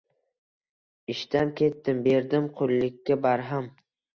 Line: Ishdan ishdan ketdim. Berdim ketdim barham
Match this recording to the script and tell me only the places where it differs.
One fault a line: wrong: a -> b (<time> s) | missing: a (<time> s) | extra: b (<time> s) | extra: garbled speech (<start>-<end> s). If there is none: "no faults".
missing: ishdan (1.5 s)
wrong: ketdim -> qullikka (2.6 s)